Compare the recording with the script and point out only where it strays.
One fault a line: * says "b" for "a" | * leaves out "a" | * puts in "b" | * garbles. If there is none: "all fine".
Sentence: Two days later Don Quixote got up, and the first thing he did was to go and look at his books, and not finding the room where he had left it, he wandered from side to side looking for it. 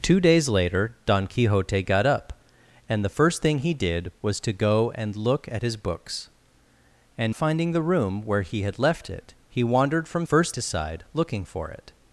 * leaves out "not"
* says "first" for "side"